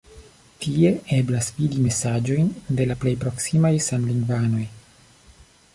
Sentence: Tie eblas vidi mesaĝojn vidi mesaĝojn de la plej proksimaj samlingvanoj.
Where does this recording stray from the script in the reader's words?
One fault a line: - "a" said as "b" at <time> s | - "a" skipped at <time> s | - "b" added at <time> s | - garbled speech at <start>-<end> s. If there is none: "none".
- "vidi mesaĝojn" skipped at 2.5 s